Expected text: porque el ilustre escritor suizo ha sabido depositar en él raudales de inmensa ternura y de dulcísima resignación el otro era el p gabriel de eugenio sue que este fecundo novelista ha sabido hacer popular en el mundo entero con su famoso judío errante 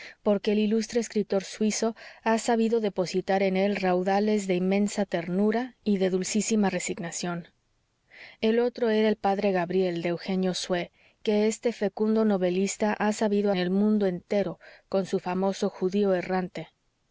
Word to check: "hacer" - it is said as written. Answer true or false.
false